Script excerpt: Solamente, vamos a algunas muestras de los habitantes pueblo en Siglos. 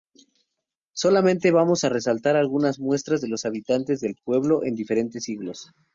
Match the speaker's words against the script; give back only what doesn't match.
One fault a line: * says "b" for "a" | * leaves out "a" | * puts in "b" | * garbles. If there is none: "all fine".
* puts in "resaltar"
* puts in "del"
* puts in "diferentes"